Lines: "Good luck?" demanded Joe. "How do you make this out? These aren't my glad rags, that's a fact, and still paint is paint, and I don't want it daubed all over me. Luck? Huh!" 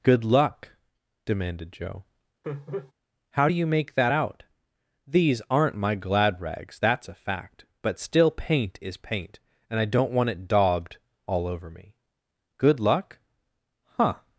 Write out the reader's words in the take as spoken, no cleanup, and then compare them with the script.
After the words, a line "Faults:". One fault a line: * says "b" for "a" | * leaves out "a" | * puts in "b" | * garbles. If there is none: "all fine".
"Good luck?" demanded Joe. "How do you make that out? These aren't my glad rags, that's a fact, but still paint is paint, and I don't want it daubed all over me. Good luck? Huh!"
Faults:
* says "that" for "this"
* says "but" for "and"
* puts in "Good"